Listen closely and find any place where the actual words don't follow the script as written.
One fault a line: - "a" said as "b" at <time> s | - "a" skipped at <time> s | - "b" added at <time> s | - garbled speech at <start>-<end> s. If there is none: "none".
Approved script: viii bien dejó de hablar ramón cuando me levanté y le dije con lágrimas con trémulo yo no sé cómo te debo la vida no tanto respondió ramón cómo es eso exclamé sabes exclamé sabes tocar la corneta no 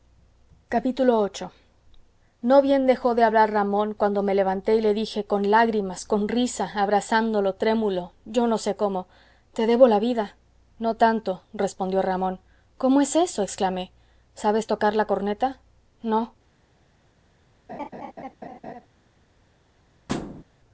- "no" added at 2.4 s
- "risa abrazándolo" added at 6.3 s
- "exclamé sabes" skipped at 14.7 s